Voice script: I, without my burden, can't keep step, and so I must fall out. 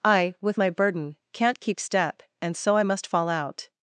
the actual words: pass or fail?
fail